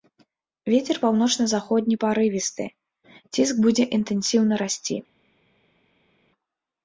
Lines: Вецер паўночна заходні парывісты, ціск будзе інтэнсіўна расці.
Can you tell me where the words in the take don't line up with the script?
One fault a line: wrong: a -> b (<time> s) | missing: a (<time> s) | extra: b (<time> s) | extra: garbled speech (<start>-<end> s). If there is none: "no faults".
no faults